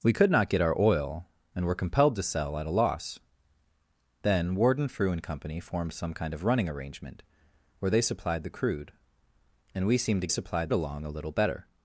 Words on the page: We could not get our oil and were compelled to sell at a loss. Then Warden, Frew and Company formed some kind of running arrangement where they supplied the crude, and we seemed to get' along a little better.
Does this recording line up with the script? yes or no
no